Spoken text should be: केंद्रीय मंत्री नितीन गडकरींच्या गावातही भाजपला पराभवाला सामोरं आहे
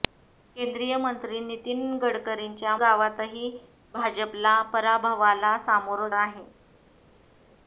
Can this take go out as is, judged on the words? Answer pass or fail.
pass